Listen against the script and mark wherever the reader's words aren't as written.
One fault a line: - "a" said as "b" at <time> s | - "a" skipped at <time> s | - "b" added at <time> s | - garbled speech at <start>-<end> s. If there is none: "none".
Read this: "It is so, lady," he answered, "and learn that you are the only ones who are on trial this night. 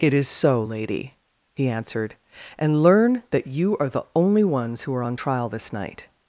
none